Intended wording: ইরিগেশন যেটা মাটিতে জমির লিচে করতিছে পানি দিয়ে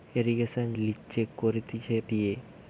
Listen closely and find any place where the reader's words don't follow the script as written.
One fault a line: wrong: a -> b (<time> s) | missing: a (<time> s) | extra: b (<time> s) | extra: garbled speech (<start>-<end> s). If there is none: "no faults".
missing: যেটা মাটিতে জমির (0.7 s)
missing: পানি (2.0 s)